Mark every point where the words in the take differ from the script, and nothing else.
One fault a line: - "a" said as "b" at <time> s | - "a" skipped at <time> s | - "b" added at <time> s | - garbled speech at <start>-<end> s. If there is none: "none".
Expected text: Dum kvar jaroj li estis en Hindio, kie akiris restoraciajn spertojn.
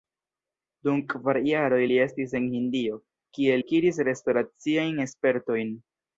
none